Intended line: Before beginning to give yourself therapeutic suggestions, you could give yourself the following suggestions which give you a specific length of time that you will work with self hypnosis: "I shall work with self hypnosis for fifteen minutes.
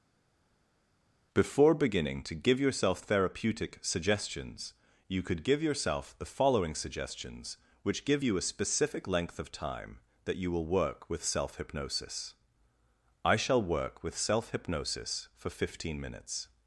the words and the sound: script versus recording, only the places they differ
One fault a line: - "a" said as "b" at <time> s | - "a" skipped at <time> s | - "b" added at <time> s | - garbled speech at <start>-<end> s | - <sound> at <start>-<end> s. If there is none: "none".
none